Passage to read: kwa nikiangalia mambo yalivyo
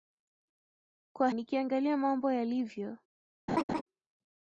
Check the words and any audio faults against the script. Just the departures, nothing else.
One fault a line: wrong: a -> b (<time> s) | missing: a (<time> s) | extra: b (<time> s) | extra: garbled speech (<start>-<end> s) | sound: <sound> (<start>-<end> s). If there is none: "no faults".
sound: laugh (3.5-3.8 s)